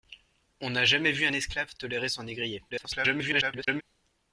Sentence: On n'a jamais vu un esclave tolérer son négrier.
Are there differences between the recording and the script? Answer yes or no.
yes